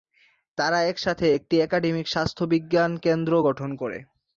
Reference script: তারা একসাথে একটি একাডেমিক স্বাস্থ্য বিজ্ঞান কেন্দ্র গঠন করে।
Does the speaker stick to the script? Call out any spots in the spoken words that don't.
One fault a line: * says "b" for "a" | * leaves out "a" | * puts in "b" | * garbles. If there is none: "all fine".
all fine